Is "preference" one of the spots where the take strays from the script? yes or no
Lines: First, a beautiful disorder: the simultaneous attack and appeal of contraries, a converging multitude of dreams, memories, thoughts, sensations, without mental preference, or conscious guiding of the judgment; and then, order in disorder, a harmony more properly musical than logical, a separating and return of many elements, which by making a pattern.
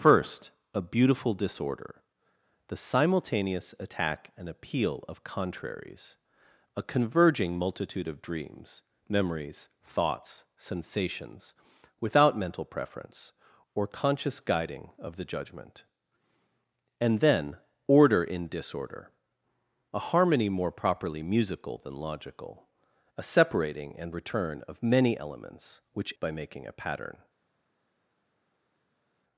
no